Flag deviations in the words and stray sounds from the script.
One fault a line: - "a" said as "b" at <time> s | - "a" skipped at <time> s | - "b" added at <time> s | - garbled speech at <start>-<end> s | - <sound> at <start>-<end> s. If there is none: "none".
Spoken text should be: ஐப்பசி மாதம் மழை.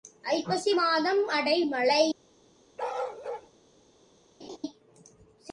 - "அடை" added at 1.3 s
- bark at 2.8-3.5 s
- laugh at 4.4-4.6 s